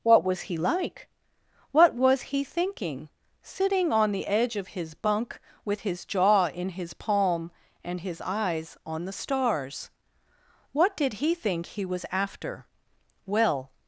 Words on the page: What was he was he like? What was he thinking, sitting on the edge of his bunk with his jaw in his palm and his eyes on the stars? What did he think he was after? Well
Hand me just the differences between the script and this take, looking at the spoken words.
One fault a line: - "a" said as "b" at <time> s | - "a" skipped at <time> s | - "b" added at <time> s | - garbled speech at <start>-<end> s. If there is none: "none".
- "was he" skipped at 0.6 s